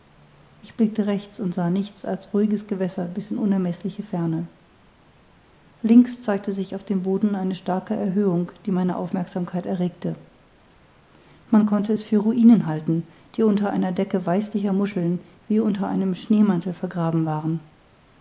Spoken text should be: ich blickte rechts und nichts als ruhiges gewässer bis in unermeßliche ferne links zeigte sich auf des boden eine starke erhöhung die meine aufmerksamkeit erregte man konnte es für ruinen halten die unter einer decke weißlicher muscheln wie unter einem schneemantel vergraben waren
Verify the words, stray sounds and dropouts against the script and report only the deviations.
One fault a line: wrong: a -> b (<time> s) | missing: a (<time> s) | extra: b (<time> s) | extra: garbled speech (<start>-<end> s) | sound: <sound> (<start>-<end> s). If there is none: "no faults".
extra: sah (1.5 s)
wrong: des -> dem (6.8 s)